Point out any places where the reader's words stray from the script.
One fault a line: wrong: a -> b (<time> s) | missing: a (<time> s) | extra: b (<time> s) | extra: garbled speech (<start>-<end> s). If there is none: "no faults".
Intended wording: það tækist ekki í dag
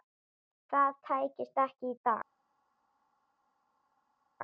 no faults